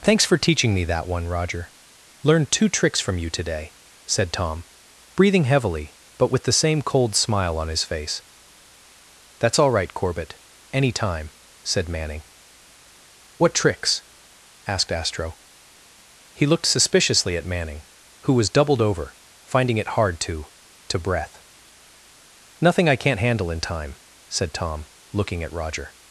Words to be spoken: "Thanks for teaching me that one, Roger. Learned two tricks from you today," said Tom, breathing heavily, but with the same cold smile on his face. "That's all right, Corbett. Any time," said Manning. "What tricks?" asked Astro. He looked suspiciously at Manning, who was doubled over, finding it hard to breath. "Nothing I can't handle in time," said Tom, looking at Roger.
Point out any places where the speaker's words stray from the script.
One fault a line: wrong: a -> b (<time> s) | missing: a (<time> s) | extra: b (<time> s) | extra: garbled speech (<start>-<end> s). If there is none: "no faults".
extra: to (20.9 s)